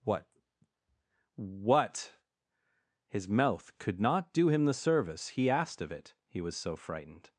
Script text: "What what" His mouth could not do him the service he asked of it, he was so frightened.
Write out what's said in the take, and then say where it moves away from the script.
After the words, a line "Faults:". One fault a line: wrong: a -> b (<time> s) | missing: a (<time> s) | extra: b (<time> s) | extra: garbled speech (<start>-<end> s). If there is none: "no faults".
"What what" His mouth could not do him the service he asked of it, he was so frightened.
Faults:
no faults